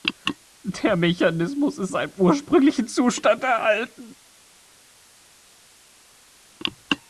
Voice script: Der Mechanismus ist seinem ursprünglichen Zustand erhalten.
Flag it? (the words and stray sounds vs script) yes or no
no